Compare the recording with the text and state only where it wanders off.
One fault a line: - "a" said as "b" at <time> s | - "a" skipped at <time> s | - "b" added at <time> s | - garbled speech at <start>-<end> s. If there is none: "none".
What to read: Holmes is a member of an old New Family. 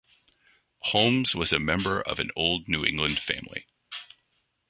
- "is" said as "was" at 1.4 s
- "England" added at 2.8 s